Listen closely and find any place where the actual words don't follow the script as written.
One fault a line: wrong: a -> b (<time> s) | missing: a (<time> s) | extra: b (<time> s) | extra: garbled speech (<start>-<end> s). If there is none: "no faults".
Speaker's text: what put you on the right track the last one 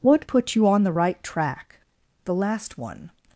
no faults